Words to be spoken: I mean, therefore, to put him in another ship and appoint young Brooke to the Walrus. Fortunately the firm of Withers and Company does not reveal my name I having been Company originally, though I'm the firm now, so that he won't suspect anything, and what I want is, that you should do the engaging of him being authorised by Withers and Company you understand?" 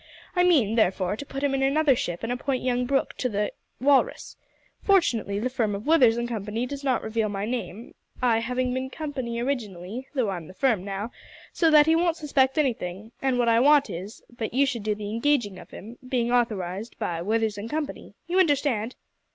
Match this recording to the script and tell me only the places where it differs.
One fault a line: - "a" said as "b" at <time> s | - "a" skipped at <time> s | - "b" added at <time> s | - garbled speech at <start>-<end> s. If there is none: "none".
none